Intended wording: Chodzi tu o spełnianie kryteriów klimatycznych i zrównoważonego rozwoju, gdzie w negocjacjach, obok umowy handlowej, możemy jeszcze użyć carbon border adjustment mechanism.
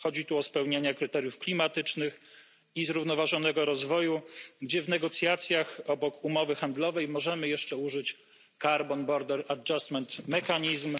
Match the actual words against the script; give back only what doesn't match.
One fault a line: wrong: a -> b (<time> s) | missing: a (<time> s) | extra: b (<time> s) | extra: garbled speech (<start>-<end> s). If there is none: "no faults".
no faults